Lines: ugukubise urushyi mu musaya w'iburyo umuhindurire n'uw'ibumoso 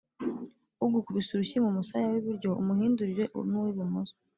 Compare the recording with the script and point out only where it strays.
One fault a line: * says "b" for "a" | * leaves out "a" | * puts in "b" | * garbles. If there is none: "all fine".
all fine